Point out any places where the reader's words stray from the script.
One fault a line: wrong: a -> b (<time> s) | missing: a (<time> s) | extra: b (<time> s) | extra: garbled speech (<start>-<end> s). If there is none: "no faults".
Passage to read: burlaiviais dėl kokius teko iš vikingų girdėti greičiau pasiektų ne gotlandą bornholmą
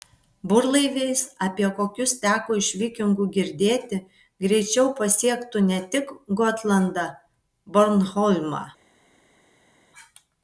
wrong: dėl -> apie (1.5 s)
extra: tik (6.0 s)